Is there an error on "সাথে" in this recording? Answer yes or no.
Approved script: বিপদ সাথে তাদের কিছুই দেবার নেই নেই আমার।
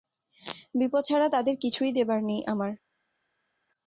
yes